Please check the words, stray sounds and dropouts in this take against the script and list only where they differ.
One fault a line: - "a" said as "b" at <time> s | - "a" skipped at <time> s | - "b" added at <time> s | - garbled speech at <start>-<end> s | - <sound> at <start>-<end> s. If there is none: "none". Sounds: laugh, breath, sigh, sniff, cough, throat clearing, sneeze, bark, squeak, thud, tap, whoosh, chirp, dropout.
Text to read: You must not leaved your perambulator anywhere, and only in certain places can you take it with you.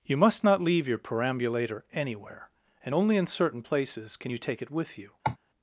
- "leaved" said as "leave" at 0.6 s
- cough at 5.2-5.4 s